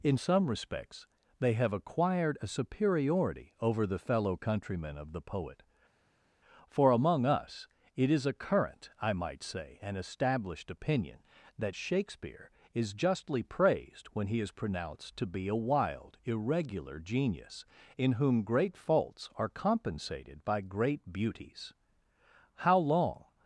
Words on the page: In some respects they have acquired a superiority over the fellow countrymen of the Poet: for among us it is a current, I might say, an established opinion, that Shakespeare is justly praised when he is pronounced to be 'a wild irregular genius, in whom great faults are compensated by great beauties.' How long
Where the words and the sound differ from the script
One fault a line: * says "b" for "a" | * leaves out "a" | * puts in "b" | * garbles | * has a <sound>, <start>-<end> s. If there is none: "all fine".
all fine